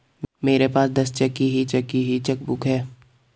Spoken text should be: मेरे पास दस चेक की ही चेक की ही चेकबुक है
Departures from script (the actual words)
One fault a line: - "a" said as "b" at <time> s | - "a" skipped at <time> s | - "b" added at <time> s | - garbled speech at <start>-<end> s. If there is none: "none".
none